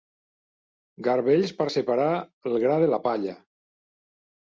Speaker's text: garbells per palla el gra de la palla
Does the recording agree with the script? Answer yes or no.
no